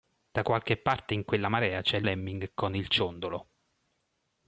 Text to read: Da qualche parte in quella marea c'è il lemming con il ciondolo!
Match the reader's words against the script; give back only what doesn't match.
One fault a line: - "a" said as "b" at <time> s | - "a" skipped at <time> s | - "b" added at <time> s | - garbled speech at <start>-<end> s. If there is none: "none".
none